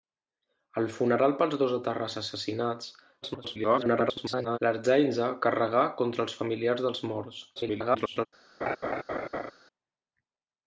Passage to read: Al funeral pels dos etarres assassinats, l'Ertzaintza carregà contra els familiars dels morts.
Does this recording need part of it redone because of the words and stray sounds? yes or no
yes